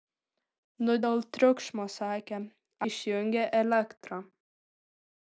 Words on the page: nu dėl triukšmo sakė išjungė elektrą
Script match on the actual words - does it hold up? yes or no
yes